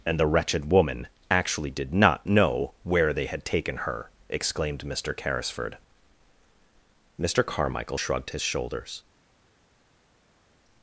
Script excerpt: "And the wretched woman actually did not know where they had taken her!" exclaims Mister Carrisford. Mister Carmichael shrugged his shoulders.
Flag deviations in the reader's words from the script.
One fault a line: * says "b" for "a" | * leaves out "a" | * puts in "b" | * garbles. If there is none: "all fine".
* says "exclaimed" for "exclaims"